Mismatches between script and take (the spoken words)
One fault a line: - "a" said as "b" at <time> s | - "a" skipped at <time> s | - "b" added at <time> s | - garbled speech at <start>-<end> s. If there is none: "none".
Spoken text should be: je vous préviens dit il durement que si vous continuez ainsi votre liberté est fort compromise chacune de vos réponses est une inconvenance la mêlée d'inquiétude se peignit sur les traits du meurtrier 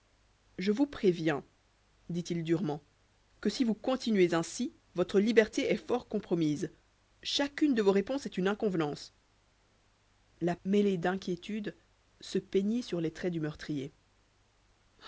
none